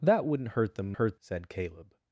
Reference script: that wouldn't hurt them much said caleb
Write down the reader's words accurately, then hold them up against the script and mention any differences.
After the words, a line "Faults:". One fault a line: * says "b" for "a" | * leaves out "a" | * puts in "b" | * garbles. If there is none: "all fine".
that wouldn't hurt them hurt said caleb
Faults:
* says "hurt" for "much"